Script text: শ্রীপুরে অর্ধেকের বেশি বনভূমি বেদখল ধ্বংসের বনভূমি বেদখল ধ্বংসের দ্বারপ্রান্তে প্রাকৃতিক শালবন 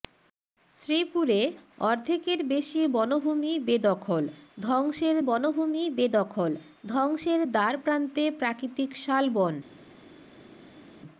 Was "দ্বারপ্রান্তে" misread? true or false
false